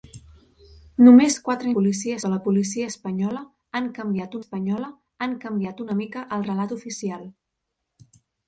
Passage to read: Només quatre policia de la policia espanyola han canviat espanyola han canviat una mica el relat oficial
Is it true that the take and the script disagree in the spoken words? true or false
false